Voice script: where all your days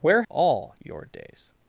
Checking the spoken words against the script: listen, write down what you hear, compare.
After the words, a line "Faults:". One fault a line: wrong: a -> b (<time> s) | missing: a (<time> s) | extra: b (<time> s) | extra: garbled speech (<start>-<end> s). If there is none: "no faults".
where all your days
Faults:
no faults